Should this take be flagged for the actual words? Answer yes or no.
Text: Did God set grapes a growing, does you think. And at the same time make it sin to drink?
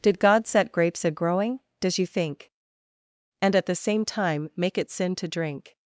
no